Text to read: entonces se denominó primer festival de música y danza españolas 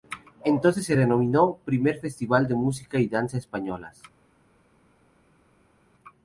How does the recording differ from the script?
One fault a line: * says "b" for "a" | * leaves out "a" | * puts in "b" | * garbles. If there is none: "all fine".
all fine